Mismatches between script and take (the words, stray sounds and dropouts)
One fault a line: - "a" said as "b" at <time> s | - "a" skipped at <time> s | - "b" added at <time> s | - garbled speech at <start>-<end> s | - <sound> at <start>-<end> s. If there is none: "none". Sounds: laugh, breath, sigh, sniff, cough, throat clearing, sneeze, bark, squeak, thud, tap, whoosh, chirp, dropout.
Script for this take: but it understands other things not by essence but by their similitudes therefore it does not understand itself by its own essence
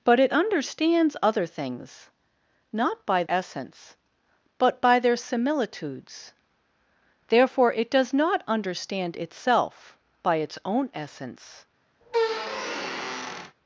- squeak at 12.0-13.6 s